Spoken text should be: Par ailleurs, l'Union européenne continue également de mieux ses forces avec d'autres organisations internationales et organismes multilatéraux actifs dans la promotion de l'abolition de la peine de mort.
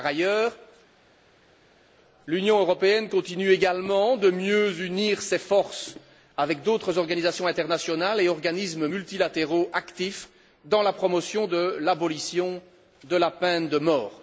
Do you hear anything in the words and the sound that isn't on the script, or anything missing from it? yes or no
yes